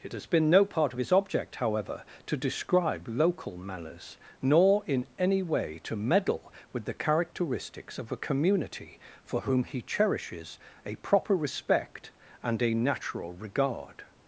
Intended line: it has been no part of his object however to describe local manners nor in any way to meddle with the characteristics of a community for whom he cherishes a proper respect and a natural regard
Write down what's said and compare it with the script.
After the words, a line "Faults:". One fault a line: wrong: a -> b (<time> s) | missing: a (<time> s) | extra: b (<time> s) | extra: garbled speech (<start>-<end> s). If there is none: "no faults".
it has been no part of his object however to describe local manners nor in any way to meddle with the characteristics of a community for whom he cherishes a proper respect and a natural regard
Faults:
no faults